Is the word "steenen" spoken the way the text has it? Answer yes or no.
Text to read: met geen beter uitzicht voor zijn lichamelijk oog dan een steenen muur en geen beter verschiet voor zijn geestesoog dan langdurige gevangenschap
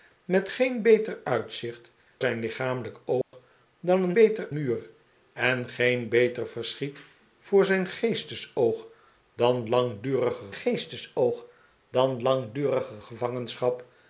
no